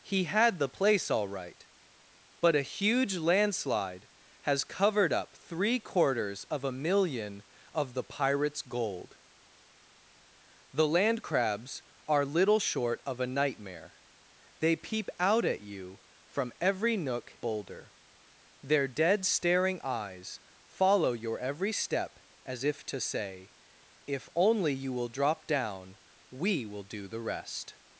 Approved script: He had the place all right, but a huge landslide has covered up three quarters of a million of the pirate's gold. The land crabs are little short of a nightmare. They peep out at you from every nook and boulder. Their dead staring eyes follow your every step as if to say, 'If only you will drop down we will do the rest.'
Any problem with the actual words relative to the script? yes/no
yes